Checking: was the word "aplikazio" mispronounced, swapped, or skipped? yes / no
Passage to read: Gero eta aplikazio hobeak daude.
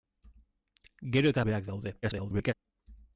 yes